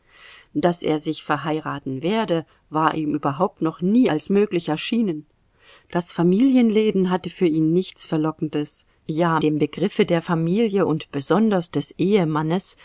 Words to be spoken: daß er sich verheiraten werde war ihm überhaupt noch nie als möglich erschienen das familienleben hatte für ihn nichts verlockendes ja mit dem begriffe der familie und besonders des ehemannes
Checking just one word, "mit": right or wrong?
wrong